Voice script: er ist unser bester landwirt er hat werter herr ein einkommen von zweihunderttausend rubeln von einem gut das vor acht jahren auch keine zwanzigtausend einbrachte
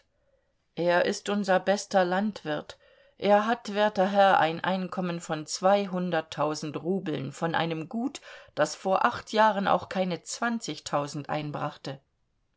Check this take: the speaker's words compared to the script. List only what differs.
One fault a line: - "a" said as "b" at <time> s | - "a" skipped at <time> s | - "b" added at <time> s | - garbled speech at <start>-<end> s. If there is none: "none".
none